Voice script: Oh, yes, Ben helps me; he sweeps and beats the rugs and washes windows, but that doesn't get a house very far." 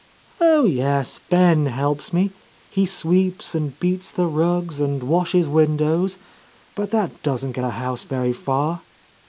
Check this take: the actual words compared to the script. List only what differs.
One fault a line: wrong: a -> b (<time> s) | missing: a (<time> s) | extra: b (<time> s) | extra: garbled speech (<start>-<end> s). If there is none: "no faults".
no faults